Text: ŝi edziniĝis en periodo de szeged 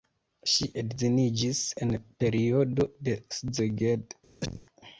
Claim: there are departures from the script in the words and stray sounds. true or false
true